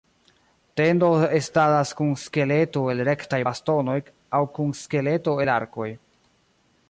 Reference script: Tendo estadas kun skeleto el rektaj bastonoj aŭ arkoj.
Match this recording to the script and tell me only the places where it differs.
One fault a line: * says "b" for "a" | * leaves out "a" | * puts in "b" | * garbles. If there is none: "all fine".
* puts in "kun skeleto el"